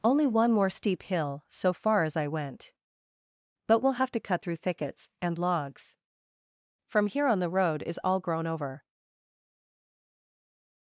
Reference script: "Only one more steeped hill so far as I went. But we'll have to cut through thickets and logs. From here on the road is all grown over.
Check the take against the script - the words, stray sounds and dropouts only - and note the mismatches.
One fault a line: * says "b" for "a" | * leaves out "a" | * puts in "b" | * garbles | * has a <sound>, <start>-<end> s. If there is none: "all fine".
* says "steep" for "steeped"